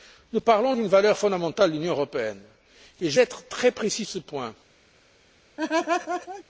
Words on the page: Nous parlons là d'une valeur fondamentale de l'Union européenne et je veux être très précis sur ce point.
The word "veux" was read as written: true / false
false